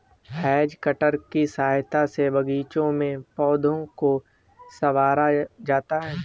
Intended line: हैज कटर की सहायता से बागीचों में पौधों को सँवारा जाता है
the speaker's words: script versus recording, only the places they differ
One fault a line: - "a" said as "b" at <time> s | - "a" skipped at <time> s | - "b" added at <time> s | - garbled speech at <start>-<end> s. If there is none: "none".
none